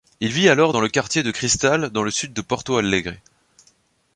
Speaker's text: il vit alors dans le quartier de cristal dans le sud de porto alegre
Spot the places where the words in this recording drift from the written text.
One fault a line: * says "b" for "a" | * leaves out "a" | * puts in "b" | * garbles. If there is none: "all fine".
all fine